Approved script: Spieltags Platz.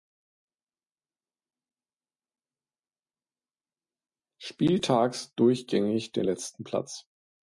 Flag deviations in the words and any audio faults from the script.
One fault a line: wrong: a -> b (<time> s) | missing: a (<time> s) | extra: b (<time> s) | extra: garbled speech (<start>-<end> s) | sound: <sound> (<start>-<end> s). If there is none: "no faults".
extra: durchgängig den letzten (5.3 s)